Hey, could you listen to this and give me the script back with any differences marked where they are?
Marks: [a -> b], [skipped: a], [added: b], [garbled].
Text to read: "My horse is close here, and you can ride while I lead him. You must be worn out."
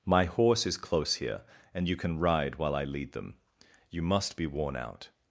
"My horse is close here, and you can ride while I lead [him. -> them] You must be worn out."